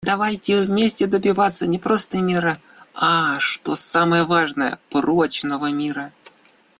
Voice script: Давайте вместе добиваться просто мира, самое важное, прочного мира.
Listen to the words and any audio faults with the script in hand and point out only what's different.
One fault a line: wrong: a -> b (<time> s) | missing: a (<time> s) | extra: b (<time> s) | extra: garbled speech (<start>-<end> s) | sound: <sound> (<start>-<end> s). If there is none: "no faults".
extra: не (1.7 s)
extra: а что (3.0 s)